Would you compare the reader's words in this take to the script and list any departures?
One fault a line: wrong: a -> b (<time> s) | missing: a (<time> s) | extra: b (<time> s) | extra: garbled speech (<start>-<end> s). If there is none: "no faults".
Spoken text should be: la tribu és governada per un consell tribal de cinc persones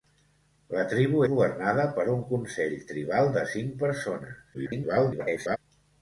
missing: és (1.2 s)
extra: garbled speech (4.5-5.6 s)